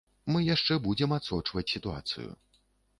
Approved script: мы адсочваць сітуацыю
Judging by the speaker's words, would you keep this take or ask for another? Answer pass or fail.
fail